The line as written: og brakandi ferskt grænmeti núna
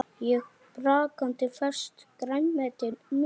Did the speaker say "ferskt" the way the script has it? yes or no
yes